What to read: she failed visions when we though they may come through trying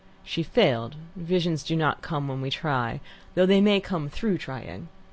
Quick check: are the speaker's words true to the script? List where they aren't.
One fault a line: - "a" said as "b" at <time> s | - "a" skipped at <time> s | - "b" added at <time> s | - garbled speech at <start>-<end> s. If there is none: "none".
- "do not come" added at 1.6 s
- "try" added at 2.5 s